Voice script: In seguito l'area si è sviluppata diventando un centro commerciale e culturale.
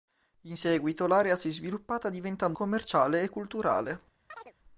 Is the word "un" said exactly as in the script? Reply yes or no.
no